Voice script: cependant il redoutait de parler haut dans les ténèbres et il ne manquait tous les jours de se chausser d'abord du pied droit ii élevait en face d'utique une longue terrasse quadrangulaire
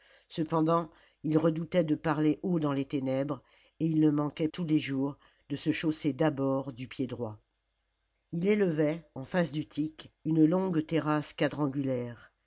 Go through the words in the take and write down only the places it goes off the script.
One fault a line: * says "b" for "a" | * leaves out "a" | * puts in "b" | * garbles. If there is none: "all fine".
all fine